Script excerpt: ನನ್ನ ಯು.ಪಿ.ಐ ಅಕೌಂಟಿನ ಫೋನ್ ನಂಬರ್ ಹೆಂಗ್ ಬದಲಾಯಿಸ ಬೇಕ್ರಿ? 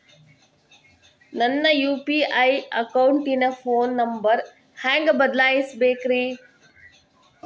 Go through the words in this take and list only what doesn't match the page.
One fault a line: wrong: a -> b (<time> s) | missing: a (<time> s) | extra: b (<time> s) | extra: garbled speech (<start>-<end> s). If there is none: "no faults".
no faults